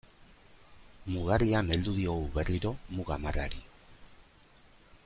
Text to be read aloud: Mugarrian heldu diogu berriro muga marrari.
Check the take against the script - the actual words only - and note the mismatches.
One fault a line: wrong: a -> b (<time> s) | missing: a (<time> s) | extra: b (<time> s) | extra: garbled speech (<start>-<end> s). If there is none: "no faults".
no faults